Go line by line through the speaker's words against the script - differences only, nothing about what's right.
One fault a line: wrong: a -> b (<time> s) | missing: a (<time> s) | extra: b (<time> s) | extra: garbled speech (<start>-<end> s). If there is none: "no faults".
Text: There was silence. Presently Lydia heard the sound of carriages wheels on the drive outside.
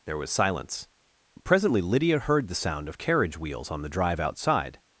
wrong: carriages -> carriage (3.0 s)